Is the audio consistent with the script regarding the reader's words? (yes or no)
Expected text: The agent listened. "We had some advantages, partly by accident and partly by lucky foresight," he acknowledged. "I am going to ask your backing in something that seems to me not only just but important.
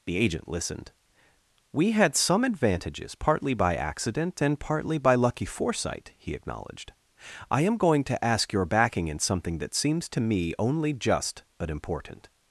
no